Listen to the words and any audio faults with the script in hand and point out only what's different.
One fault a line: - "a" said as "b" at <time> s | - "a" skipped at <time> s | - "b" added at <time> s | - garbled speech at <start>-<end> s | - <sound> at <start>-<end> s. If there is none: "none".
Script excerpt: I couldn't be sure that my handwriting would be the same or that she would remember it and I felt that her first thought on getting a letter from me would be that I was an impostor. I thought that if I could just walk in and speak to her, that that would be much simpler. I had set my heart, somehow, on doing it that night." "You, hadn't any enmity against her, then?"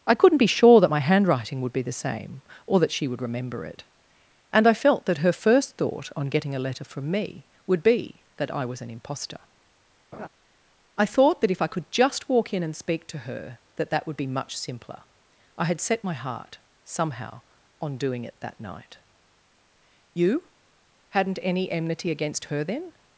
- laugh at 10.1-10.3 s